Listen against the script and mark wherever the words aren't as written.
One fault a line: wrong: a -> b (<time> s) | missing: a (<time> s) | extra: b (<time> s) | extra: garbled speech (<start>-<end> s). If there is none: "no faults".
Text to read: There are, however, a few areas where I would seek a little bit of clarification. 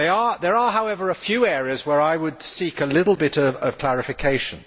no faults